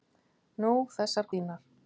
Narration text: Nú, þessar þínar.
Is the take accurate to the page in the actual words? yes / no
yes